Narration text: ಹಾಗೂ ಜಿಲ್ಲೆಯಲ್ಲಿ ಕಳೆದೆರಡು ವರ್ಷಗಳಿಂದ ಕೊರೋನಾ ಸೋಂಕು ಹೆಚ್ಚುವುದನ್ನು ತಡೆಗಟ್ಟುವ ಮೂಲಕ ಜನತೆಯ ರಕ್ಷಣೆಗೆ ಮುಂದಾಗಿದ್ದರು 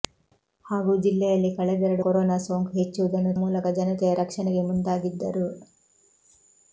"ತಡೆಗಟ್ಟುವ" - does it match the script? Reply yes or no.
no